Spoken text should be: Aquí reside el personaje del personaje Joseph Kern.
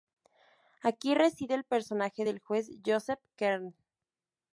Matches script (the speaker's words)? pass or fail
fail